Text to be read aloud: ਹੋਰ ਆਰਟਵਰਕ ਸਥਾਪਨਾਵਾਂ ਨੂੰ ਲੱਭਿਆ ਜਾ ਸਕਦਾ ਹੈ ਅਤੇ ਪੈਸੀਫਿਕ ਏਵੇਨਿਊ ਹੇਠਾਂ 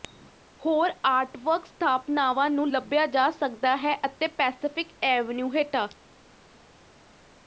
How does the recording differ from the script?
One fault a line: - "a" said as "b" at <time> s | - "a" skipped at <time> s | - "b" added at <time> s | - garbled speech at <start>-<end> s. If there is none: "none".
none